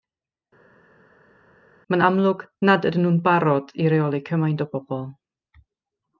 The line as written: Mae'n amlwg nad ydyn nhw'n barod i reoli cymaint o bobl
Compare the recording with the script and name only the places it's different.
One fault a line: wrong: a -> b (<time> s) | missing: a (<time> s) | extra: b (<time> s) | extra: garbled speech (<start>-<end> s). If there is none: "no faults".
no faults